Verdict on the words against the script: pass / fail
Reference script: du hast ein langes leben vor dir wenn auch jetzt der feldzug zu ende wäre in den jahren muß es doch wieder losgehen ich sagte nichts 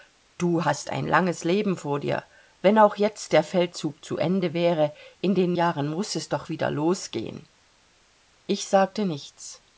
pass